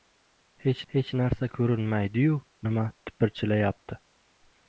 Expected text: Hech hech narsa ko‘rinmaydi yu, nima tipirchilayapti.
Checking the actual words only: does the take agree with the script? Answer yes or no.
yes